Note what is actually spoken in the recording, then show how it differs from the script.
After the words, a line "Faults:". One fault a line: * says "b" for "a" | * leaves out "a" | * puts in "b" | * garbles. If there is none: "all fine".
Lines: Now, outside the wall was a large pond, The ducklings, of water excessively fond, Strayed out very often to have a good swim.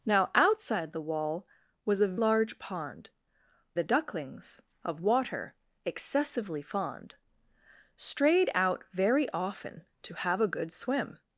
Now, outside the wall was a large pond, The ducklings, of water excessively fond, Strayed out very often to have a good swim.
Faults:
all fine